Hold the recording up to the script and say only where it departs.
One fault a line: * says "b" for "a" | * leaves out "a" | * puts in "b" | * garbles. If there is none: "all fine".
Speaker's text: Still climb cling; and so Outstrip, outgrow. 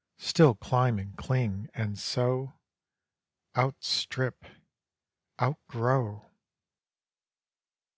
* puts in "and"